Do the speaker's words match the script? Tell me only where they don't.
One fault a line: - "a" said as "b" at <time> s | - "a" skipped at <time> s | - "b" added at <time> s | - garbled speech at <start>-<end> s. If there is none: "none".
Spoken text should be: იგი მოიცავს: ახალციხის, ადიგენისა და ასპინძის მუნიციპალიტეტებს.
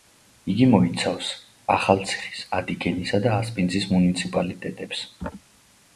none